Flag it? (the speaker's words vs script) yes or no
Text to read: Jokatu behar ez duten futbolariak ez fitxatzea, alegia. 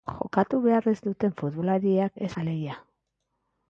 yes